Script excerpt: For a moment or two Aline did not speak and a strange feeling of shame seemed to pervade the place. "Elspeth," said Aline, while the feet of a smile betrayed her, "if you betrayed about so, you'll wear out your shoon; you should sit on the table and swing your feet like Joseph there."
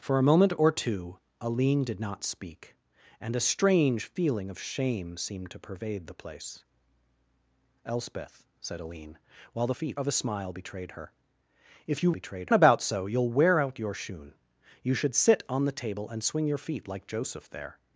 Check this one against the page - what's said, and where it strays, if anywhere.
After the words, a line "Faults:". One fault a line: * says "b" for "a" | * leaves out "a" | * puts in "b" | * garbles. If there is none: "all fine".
For a moment or two Aline did not speak and a strange feeling of shame seemed to pervade the place. "Elspeth," said Aline, while the feet of a smile betrayed her, "if you betrayed about so, you'll wear out your shoon; you should sit on the table and swing your feet like Joseph there."
Faults:
all fine